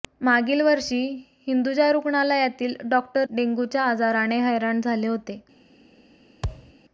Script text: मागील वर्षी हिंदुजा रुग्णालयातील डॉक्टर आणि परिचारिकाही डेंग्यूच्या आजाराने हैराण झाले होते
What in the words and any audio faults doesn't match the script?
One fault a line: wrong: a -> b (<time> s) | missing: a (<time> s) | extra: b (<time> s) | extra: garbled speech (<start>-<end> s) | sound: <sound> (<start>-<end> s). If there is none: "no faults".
missing: आणि परिचारिकाही (3.3 s)
sound: thud (6.4-6.7 s)